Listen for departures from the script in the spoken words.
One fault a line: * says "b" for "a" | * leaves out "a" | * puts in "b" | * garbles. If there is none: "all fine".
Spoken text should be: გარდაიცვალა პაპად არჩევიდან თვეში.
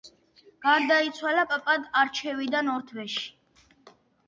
* puts in "ორ"